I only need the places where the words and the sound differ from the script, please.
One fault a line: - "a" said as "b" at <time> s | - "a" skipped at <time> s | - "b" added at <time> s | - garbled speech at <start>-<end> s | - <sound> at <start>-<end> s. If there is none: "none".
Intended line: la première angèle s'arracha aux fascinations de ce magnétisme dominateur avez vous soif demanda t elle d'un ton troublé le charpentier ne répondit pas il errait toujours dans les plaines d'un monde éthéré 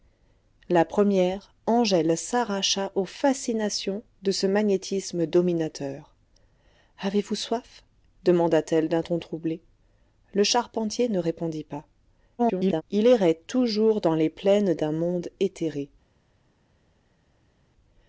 - garbled speech at 12.4-12.8 s